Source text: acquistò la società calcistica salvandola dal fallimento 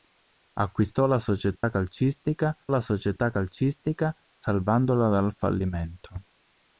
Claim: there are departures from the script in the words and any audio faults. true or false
true